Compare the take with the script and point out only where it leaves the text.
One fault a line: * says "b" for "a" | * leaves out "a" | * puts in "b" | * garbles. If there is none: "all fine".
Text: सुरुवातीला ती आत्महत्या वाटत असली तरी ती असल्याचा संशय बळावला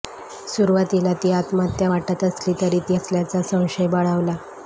all fine